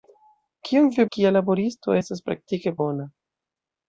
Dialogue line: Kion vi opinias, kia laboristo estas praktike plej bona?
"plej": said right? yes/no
no